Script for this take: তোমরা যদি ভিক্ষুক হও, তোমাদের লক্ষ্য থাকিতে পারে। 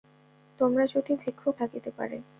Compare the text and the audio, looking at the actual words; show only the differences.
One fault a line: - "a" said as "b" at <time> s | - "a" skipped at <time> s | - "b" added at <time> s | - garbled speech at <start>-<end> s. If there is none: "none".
- "হও তোমাদের লক্ষ্য" skipped at 1.6 s